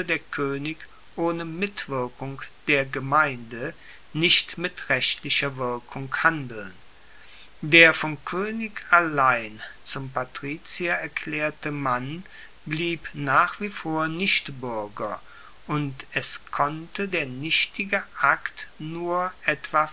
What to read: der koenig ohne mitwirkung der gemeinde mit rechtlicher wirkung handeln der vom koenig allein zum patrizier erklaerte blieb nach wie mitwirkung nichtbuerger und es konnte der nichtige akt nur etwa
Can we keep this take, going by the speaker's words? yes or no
no